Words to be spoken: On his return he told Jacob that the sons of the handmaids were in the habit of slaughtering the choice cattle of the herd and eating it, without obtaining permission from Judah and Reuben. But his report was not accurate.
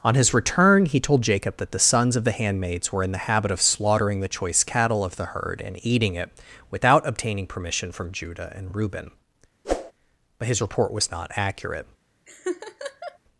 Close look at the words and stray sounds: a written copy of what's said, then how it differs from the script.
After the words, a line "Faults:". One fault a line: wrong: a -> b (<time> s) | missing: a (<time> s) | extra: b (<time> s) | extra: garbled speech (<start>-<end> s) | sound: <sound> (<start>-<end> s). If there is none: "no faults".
On his return he told Jacob that the sons of the handmaids were in the habit of slaughtering the choice cattle of the herd and eating it, without obtaining permission from Judah and Reuben. But his report was not accurate.
Faults:
sound: whoosh (9.6-9.9 s)
sound: laugh (12.3-13.2 s)